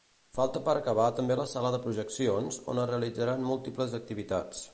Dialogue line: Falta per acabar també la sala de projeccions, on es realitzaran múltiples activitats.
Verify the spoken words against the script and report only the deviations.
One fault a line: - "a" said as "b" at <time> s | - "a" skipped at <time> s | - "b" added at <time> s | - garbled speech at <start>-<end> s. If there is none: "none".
none